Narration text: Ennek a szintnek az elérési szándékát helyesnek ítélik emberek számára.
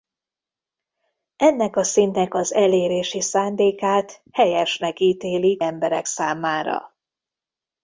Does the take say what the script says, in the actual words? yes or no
yes